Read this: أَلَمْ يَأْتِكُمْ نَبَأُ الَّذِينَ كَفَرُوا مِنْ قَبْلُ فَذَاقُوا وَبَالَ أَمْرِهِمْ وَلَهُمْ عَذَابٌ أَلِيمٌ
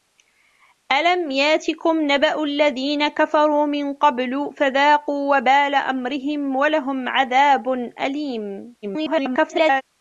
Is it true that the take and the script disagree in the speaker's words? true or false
true